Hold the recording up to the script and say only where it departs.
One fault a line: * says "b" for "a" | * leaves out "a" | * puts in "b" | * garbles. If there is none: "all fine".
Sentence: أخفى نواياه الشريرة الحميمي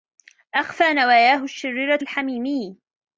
all fine